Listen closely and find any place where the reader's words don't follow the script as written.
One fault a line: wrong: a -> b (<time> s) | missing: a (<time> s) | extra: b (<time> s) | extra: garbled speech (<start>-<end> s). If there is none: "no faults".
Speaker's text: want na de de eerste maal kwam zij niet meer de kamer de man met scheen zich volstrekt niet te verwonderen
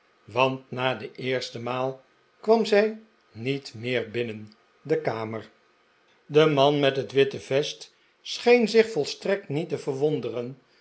missing: de (1.1 s)
extra: binnen (4.1 s)
extra: het witte vest (7.0 s)